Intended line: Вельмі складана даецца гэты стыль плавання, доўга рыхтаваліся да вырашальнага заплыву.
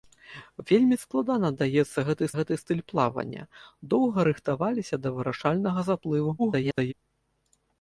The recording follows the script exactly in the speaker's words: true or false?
false